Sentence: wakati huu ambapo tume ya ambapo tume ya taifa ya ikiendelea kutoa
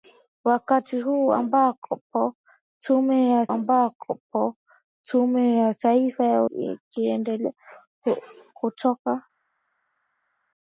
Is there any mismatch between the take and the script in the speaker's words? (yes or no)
no